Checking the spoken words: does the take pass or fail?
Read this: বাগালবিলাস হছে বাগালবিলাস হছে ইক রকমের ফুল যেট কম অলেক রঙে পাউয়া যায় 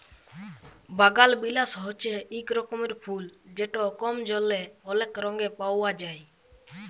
fail